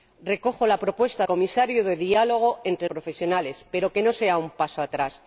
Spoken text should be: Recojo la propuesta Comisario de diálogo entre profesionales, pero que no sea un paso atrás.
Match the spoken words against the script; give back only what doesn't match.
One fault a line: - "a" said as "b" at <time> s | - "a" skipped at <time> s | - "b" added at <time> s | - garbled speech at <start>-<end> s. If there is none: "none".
none